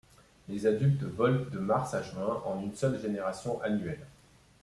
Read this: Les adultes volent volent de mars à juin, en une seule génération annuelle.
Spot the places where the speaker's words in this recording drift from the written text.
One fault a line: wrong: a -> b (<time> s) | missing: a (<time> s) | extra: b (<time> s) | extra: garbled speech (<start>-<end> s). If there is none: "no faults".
missing: volent (1.4 s)